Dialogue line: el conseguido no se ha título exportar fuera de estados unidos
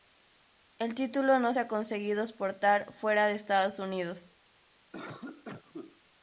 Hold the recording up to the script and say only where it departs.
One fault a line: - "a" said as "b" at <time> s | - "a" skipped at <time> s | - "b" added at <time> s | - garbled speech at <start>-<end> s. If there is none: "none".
- "conseguido" said as "título" at 0.9 s
- "título" said as "conseguido" at 1.7 s